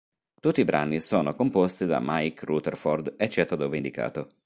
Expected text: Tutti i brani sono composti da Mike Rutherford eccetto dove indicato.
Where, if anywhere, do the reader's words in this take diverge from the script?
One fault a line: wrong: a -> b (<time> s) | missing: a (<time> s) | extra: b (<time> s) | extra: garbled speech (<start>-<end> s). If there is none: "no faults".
no faults